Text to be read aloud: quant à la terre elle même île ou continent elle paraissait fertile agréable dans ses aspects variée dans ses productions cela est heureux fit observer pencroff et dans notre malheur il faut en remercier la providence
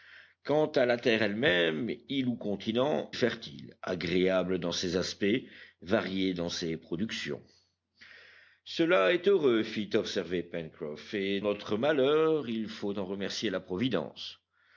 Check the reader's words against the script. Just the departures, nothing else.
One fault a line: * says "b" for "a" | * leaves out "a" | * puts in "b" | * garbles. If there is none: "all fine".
* leaves out "elle paraissait"
* leaves out "dans"